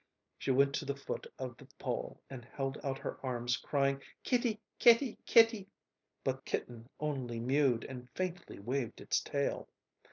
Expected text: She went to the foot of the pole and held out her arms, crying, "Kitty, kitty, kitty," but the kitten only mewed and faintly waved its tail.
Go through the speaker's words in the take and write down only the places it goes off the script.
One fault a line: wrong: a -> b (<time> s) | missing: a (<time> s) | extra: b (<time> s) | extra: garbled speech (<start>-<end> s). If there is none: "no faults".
missing: the (6.4 s)